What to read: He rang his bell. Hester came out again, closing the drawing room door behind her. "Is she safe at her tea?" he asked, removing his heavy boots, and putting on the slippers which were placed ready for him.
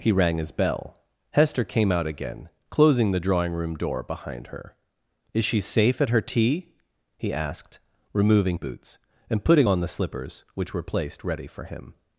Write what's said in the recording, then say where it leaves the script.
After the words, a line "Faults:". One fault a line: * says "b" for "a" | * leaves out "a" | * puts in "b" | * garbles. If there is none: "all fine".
He rang his bell. Hester came out again, closing the drawing room door behind her. "Is she safe at her tea?" he asked, removing boots, and putting on the slippers which were placed ready for him.
Faults:
* leaves out "his heavy"